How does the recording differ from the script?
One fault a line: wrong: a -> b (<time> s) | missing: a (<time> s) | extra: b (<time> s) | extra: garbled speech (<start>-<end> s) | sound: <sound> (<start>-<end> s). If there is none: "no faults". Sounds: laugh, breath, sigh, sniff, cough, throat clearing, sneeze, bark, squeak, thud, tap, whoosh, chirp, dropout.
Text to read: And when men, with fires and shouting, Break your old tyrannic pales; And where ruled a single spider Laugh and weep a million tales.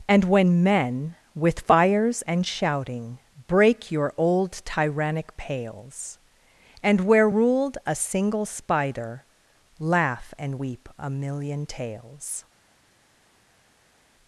no faults